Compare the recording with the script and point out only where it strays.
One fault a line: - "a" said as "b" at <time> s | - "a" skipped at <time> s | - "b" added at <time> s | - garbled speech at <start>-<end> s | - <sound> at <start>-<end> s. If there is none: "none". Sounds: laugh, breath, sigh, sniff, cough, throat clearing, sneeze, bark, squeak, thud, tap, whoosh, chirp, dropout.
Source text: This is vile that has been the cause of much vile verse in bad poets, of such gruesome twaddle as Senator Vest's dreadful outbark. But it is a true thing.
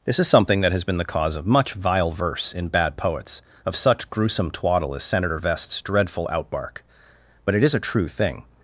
- "vile" said as "something" at 0.3 s